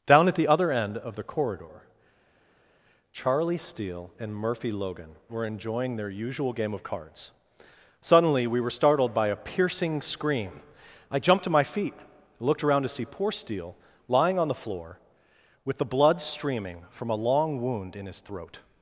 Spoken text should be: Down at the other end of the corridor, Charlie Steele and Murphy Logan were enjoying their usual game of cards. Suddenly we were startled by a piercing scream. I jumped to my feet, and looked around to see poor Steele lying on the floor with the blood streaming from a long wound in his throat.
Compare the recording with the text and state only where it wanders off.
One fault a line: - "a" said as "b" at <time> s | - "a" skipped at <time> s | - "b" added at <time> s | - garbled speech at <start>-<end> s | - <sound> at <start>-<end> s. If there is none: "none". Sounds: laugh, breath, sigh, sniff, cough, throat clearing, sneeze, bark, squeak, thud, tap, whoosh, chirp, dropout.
- "and" skipped at 11.9 s